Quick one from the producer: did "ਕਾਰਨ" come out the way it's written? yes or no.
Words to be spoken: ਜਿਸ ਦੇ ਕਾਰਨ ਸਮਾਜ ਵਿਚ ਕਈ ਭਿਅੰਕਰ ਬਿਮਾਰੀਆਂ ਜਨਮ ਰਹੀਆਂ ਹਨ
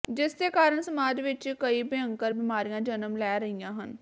yes